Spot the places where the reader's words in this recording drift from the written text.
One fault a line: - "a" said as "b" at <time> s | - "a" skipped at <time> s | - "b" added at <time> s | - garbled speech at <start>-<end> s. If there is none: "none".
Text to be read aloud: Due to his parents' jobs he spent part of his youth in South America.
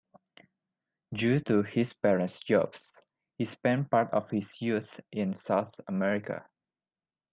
none